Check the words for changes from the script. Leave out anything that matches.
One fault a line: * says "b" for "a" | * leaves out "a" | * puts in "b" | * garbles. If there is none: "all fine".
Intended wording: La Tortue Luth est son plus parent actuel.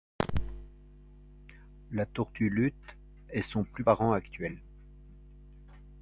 all fine